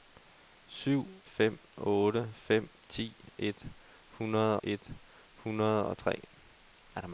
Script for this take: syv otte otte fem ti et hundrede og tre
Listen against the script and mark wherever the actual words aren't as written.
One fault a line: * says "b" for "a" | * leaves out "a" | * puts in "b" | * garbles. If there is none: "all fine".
* says "fem" for "otte"
* puts in "et hundrede"